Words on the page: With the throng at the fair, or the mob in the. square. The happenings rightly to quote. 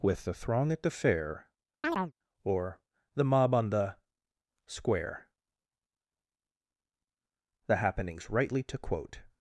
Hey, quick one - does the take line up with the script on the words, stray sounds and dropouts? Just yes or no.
no